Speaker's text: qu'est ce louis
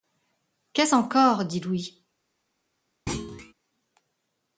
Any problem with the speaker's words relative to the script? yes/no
yes